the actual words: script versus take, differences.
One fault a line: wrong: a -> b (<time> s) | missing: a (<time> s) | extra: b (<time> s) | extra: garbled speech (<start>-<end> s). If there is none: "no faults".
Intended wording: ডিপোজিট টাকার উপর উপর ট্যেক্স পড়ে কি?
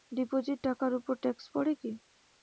missing: উপর (1.1 s)